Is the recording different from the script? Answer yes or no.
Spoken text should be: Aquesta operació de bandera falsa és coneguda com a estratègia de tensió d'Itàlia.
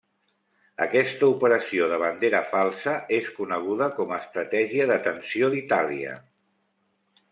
no